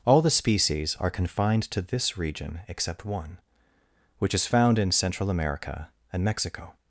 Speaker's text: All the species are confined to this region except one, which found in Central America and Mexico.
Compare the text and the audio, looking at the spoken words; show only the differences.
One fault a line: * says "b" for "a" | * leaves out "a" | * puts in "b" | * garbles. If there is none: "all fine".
* puts in "is"